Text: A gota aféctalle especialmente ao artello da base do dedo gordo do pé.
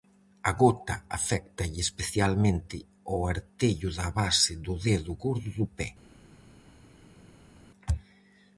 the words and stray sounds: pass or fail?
pass